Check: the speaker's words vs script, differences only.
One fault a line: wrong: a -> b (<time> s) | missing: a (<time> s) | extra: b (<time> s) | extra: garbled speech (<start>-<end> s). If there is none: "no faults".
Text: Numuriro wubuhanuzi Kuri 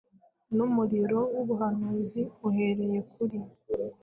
extra: Uhereye (2.5 s)